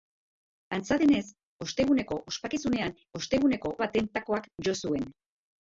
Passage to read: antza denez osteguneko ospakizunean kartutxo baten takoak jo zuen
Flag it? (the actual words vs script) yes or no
yes